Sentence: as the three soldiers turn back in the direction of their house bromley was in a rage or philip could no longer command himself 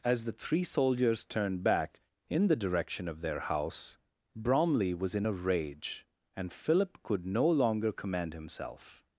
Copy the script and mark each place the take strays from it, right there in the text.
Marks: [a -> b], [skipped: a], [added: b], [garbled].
as the three soldiers [turn -> turned] back in the direction of their house bromley was in a rage [or -> and] philip could no longer command himself